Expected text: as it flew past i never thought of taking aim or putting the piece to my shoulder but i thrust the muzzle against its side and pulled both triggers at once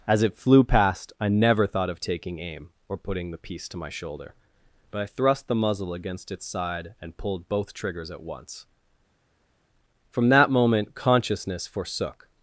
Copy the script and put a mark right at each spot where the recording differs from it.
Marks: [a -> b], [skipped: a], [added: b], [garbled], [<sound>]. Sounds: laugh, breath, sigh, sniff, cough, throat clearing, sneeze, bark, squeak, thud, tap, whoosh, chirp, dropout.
as it flew past i never thought of taking aim or putting the piece to my shoulder but i thrust the muzzle against its side and pulled both triggers at once [added: from that moment consciousness forsook]